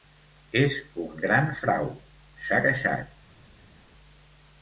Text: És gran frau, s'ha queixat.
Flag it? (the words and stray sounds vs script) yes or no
yes